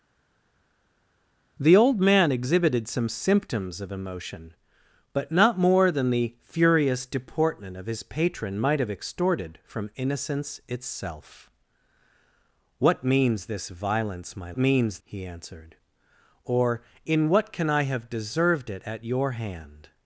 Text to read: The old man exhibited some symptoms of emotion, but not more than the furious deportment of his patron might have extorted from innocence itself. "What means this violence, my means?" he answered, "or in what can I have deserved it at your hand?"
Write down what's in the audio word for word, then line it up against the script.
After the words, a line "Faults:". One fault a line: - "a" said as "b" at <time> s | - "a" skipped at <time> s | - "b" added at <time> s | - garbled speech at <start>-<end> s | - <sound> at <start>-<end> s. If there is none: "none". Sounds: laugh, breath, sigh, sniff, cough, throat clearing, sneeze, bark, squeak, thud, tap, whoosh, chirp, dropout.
The old man exhibited some symptoms of emotion, but not more than the furious deportment of his patron might have extorted from innocence itself. "What means this violence, my means?" he answered, "or in what can I have deserved it at your hand?"
Faults:
none